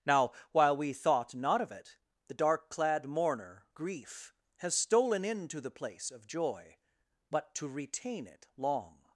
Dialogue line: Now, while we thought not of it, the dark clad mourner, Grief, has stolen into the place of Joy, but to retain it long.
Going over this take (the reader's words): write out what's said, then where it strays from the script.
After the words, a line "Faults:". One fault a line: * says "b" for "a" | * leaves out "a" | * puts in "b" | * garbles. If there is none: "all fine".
Now, while we thought not of it, the dark clad mourner, Grief, has stolen into the place of Joy, but to retain it long.
Faults:
all fine